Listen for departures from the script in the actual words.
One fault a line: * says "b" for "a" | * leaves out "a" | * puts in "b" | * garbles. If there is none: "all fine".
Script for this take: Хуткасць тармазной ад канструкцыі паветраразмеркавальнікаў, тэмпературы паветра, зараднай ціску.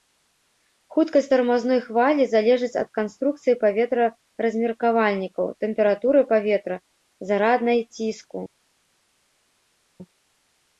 * puts in "хвалі залежыць"